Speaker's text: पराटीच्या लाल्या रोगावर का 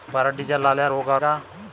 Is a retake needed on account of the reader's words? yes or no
no